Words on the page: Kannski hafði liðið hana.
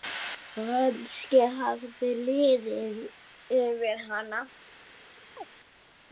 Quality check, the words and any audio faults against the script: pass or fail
fail